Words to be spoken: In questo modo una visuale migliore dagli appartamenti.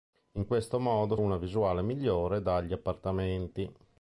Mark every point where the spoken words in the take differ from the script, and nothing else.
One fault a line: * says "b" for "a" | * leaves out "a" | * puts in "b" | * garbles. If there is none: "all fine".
all fine